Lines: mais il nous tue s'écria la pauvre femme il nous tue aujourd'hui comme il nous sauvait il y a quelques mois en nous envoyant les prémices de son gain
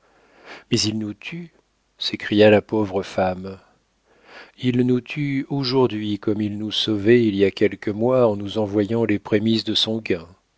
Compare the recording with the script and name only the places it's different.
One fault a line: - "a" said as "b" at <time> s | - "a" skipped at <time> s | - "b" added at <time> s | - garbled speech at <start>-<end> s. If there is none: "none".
none